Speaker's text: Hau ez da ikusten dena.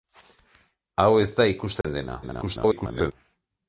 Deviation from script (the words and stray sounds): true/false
true